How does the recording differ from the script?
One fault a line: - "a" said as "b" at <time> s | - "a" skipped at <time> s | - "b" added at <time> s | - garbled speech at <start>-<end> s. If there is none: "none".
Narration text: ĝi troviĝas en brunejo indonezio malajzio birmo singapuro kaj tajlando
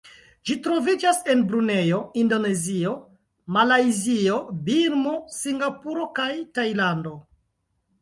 none